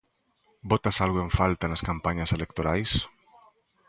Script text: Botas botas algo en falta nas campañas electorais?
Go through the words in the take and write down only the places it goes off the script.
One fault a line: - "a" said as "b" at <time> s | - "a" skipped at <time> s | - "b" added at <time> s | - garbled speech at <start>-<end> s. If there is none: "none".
- "botas" skipped at 1.0 s